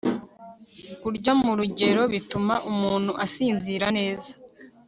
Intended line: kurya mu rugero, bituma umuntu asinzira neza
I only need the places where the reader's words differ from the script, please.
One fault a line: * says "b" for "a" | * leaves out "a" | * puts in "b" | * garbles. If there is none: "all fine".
all fine